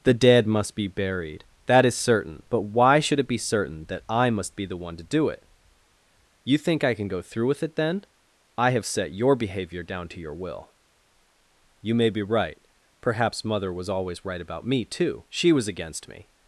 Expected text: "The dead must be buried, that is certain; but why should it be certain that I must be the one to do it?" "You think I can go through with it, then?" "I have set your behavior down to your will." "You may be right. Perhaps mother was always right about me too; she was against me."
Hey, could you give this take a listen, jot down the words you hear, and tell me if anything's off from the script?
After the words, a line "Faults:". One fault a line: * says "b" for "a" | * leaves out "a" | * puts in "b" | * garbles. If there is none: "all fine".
"The dead must be buried, that is certain; but why should it be certain that I must be the one to do it?" "You think I can go through with it, then?" "I have set your behavior down to your will." "You may be right. Perhaps mother was always right about me too; she was against me."
Faults:
all fine